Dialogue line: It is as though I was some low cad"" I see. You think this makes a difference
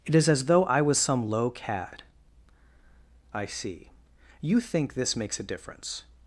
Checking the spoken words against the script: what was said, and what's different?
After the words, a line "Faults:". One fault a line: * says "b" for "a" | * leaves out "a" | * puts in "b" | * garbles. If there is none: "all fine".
It is as though I was some low cad"" I see. You think this makes a difference
Faults:
all fine